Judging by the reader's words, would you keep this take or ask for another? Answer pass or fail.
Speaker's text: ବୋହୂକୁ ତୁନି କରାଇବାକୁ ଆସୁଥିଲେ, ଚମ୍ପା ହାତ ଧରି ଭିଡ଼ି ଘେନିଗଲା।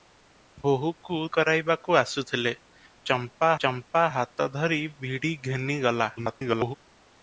fail